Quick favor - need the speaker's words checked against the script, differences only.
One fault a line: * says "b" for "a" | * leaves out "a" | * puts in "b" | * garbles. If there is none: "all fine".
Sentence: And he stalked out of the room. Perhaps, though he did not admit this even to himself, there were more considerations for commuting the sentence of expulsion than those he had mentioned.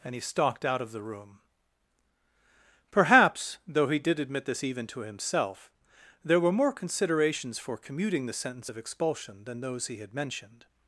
* leaves out "not"